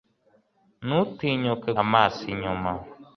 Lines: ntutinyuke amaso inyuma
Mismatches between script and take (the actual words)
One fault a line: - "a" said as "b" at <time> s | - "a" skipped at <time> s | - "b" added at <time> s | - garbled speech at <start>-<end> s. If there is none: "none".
none